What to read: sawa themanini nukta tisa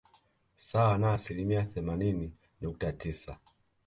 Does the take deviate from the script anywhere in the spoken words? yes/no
yes